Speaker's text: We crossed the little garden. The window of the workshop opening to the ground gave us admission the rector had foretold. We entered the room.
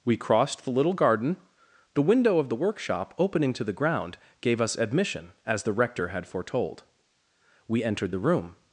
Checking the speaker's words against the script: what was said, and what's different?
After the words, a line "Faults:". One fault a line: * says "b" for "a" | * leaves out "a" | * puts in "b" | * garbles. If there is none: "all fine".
We crossed the little garden. The window of the workshop opening to the ground gave us admission as the rector had foretold. We entered the room.
Faults:
* puts in "as"